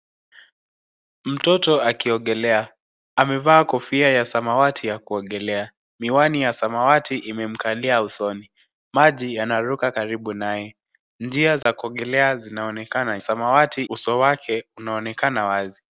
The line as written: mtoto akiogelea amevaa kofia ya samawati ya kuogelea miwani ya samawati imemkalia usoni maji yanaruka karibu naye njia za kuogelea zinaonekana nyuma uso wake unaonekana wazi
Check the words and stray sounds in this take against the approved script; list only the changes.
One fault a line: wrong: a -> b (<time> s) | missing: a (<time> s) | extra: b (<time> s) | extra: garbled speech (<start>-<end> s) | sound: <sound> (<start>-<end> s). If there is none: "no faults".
sound: dropout (11.6-11.7 s)
wrong: nyuma -> samawati (13.2 s)